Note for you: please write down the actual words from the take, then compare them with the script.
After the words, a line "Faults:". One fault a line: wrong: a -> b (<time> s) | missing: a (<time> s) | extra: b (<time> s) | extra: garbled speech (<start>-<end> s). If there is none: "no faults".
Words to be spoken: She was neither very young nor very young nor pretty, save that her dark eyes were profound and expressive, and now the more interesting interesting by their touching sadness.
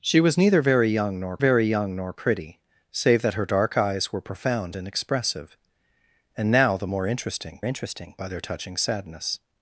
She was neither very young nor very young nor pretty, save that her dark eyes were profound and expressive, and now the more interesting interesting by their touching sadness.
Faults:
no faults